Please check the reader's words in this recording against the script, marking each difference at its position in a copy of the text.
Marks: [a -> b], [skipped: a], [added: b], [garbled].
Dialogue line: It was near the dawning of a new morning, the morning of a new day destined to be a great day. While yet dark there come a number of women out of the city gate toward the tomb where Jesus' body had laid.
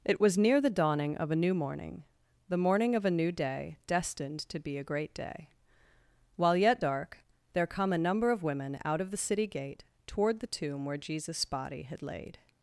It was near the dawning of a new morning, the morning of a new day destined to be a great day. While yet dark there come a number of women out of the city gate toward the tomb where Jesus' body had laid.